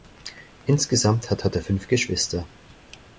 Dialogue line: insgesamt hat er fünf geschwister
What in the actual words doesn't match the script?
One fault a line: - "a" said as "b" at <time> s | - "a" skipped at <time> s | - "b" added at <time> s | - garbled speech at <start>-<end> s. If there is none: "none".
- "hat" added at 1.4 s